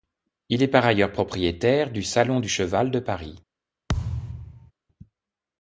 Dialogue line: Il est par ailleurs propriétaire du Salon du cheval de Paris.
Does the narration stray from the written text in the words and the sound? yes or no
yes